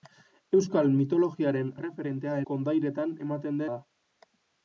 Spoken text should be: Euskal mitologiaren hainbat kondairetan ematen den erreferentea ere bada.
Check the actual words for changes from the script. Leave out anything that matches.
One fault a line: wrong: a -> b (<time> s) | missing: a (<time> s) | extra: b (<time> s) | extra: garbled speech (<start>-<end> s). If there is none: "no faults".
wrong: hainbat -> erreferentea (1.8 s)
missing: den erreferentea ere (3.7 s)